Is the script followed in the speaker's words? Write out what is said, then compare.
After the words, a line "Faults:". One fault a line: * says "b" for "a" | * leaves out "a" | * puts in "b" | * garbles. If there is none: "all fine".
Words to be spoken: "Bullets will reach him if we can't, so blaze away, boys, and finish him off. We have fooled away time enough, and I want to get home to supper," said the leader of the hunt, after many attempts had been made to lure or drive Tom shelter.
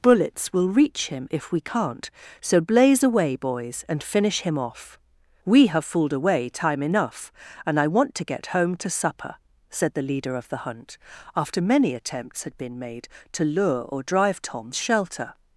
"Bullets will reach him if we can't, so blaze away, boys, and finish him off. We have fooled away time enough, and I want to get home to supper," said the leader of the hunt, after many attempts had been made to lure or drive Tom shelter.
Faults:
all fine